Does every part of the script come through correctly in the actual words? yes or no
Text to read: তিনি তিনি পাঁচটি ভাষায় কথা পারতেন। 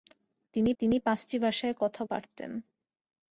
yes